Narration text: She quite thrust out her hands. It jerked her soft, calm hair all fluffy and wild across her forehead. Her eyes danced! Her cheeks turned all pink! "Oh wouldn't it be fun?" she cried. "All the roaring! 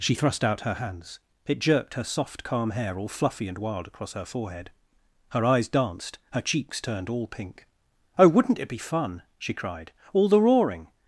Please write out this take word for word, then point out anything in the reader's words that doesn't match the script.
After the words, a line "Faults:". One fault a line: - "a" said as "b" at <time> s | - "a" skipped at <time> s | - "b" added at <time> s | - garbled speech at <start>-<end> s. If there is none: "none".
She thrust out her hands. It jerked her soft, calm hair all fluffy and wild across her forehead. Her eyes danced! Her cheeks turned all pink! "Oh wouldn't it be fun?" she cried. "All the roaring!
Faults:
- "quite" skipped at 0.1 s